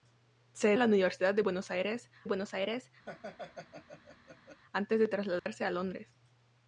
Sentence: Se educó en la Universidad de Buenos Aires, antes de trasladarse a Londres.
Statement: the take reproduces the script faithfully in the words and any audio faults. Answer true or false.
false